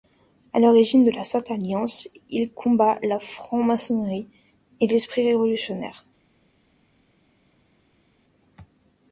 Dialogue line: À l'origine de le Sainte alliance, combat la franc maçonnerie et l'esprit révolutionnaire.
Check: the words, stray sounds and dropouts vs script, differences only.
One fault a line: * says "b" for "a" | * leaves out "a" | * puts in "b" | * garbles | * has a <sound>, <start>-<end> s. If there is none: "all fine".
* says "la" for "le"
* puts in "il"